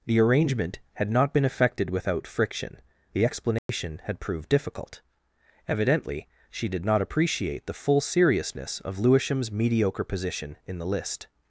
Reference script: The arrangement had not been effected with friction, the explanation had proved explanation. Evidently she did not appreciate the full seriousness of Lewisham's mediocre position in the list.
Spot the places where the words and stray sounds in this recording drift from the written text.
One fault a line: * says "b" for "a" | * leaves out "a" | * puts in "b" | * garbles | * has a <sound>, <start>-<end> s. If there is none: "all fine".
* says "without" for "with"
* has a dropout, 3.6-3.7 s
* says "difficult" for "explanation"